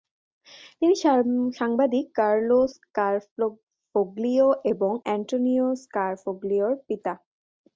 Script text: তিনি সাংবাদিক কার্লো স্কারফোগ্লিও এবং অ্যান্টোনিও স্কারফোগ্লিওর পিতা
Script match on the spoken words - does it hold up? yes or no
yes